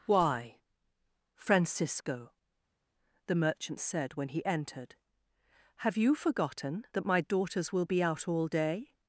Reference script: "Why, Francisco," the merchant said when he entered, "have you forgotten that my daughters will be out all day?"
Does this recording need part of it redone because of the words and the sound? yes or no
no